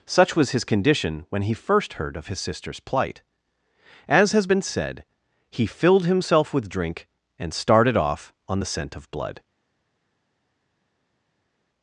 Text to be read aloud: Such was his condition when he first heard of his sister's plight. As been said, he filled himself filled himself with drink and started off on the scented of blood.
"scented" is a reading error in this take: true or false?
true